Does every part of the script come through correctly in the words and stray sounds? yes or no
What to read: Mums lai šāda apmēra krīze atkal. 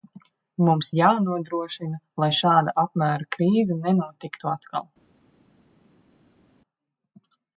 no